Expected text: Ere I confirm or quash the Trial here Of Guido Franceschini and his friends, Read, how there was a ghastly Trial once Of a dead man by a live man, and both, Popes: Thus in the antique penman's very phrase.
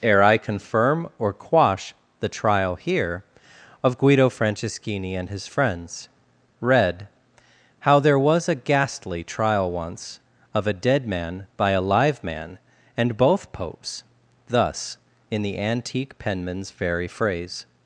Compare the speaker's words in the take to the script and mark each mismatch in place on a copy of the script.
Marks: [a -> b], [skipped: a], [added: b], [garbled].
Ere I confirm or quash the Trial here Of Guido Franceschini and his friends, Read, how there was a ghastly Trial once Of a dead man by a live man, and both, Popes: Thus in the antique penman's very phrase.